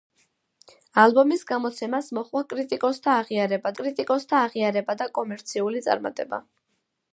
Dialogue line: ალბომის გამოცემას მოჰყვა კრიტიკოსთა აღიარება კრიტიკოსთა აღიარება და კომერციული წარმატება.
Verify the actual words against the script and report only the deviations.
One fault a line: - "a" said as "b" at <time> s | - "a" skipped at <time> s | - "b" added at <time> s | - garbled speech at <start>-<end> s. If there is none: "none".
none